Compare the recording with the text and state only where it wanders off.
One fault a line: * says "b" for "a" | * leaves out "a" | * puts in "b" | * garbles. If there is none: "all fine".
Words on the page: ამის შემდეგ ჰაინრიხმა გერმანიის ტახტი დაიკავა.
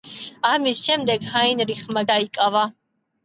* leaves out "გერმანიის ტახტი"